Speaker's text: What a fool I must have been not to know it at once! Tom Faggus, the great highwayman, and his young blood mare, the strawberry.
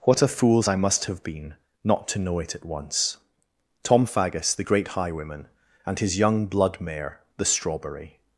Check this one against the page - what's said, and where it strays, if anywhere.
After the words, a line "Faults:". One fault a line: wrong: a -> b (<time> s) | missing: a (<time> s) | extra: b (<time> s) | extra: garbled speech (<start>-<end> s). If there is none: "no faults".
What a fools I must have been not to know it at once! Tom Faggus, the great highwayman, and his young blood mare, the strawberry.
Faults:
wrong: fool -> fools (0.3 s)